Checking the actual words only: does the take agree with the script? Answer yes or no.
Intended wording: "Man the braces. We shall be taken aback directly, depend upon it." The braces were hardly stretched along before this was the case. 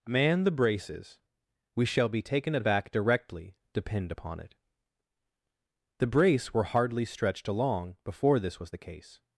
no